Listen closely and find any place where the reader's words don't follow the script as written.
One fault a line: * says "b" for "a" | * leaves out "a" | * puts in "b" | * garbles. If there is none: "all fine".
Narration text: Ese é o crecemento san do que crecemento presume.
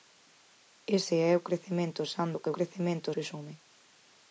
all fine